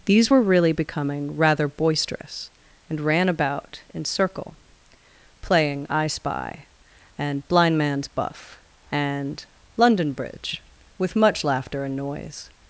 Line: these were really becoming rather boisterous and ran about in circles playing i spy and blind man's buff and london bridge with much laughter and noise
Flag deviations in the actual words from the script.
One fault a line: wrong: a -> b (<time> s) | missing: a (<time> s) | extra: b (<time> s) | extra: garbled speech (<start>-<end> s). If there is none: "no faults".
wrong: circles -> circle (4.0 s)